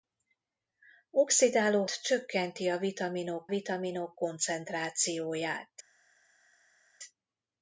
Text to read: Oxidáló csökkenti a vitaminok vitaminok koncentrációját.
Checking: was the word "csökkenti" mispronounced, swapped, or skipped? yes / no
no